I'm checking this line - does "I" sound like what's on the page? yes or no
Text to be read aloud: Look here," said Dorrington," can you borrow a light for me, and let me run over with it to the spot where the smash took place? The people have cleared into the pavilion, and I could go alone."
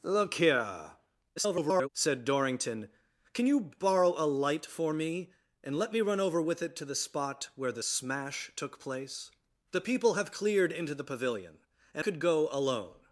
no